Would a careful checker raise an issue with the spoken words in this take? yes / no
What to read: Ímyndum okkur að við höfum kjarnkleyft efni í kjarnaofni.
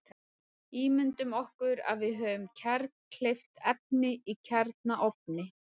no